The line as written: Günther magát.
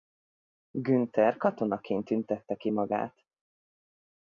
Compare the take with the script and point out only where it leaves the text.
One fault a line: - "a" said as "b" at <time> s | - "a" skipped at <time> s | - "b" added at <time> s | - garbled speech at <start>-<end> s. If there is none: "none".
- "katonaként tüntette ki" added at 1.4 s